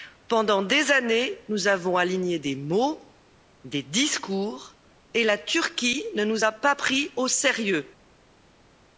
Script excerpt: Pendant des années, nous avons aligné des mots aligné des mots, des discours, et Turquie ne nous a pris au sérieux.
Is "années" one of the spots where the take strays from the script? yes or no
no